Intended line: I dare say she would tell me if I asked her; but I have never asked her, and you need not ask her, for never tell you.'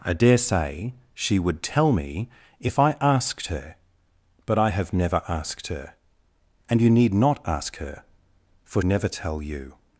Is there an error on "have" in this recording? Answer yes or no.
no